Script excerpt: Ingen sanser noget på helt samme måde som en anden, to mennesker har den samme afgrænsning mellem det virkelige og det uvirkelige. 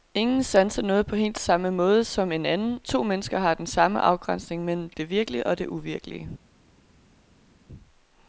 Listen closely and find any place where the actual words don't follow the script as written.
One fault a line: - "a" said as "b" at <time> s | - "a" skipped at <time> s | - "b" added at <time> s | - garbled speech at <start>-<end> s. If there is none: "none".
none